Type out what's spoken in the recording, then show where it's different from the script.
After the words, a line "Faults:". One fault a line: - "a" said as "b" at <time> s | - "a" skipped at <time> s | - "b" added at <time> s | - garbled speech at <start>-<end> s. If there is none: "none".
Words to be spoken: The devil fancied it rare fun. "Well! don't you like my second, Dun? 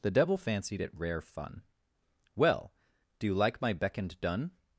The devil fancied it rare fun. "Well! do you like my beckoned, Dun?
Faults:
- "don't" said as "do" at 3.2 s
- "second" said as "beckoned" at 3.7 s